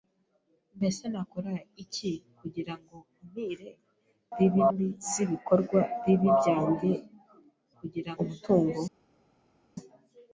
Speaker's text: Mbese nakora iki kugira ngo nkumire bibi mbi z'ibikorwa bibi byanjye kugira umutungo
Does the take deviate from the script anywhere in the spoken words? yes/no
no